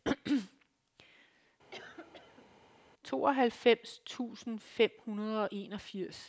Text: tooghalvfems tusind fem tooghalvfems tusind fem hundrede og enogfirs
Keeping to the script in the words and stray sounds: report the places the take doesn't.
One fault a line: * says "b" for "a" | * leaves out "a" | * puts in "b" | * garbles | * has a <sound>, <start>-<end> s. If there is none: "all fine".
* has a cough, 1.7-2.6 s
* leaves out "tooghalvfems tusind fem"